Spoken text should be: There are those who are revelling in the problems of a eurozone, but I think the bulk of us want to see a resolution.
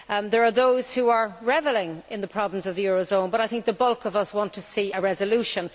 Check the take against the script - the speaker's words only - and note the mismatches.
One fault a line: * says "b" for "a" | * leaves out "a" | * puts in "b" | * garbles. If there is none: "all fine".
* says "the" for "a"